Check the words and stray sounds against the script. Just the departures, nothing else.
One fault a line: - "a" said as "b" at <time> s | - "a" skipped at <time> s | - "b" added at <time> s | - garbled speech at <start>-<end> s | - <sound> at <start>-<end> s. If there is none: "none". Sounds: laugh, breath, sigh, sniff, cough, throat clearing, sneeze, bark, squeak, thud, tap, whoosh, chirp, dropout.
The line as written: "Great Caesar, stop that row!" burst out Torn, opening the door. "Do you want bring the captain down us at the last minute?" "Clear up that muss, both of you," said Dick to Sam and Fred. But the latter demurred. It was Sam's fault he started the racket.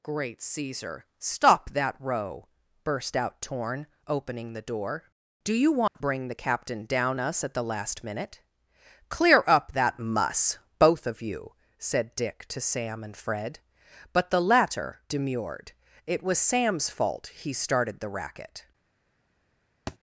- dropout at 5.9-6.0 s
- thud at 19.9-20.0 s